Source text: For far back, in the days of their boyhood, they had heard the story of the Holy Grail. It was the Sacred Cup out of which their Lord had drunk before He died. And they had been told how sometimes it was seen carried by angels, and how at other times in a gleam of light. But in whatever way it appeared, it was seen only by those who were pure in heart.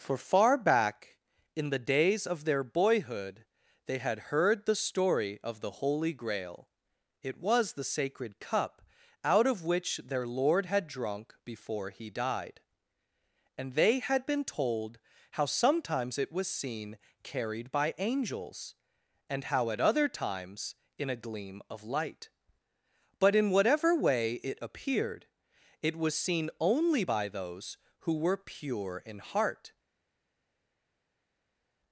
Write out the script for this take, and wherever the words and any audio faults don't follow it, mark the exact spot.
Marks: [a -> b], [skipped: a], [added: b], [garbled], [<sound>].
For far back, in the days of their boyhood, they had heard the story of the Holy Grail. It was the Sacred Cup out of which their Lord had drunk before He died. And they had been told how sometimes it was seen carried by angels, and how at other times in a gleam of light. But in whatever way it appeared, it was seen only by those who were pure in heart.